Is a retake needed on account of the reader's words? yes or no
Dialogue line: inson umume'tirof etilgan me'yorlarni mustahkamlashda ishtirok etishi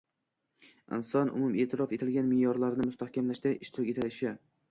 no